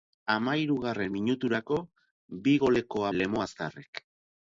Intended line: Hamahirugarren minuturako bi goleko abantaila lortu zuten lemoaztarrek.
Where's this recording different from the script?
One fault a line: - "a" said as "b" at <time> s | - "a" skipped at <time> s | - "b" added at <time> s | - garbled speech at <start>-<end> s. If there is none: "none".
- "abantaila lortu zuten" skipped at 3.0 s